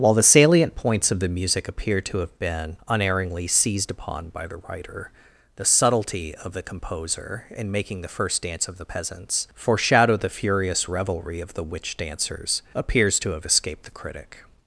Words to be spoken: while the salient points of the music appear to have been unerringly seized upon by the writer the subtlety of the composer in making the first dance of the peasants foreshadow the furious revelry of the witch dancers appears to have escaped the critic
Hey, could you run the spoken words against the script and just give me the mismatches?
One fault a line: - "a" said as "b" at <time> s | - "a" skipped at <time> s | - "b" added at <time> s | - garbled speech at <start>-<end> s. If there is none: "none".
none